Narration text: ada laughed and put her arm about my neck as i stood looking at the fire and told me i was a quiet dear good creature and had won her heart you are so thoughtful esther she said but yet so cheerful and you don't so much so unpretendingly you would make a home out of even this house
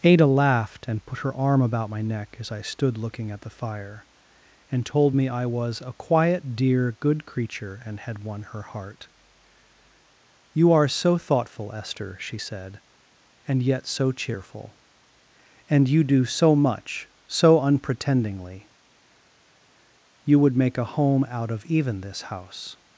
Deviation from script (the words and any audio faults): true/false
true